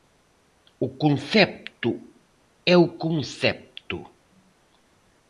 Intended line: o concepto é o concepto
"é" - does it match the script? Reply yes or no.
yes